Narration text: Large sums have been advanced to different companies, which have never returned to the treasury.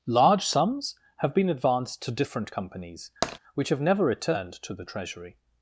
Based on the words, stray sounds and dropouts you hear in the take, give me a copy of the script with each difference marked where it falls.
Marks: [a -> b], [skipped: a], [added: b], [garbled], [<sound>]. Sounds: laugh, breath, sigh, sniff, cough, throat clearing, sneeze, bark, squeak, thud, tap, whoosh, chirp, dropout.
Large sums have been advanced to different companies, [tap] which have never returned to the treasury.